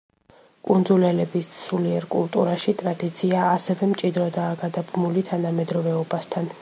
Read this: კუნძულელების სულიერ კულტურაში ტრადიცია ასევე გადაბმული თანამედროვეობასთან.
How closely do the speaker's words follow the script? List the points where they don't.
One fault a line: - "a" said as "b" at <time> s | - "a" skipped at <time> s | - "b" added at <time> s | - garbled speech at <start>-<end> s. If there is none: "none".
- "მჭიდროდაა" added at 3.9 s